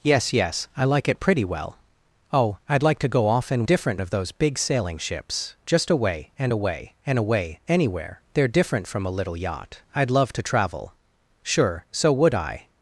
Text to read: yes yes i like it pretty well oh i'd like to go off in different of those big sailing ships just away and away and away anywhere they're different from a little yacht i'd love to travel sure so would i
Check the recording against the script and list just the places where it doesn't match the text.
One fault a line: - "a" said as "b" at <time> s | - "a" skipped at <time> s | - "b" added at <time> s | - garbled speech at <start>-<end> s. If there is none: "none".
none